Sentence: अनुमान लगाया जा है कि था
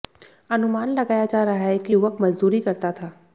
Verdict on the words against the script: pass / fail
fail